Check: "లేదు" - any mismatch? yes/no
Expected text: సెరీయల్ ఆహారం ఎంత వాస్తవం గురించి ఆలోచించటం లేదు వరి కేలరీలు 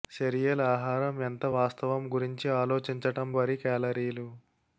yes